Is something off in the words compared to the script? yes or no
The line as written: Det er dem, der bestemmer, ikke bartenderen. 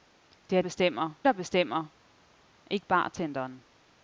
yes